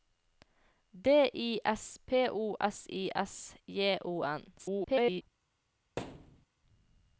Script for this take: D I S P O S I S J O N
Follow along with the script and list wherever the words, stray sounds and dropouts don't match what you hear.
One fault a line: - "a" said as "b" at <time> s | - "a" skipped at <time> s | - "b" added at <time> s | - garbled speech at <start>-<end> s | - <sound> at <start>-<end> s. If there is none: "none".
- garbled speech at 4.6-5.2 s
- thud at 6.0-6.5 s